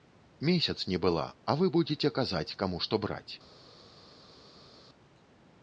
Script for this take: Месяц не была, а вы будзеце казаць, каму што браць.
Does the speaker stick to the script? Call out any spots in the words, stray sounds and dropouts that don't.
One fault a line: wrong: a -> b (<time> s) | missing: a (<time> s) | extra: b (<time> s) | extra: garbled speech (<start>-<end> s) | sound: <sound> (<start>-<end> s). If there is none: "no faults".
no faults